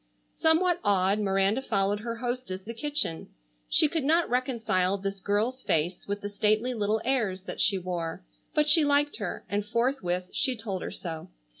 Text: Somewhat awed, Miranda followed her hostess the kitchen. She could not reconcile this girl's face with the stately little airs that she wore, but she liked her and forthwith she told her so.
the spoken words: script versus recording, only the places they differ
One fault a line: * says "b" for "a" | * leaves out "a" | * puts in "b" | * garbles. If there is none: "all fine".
all fine